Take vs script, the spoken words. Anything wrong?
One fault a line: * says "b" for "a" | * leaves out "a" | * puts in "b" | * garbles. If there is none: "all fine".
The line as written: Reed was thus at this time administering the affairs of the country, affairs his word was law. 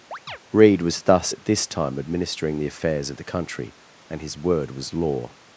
* says "and" for "affairs"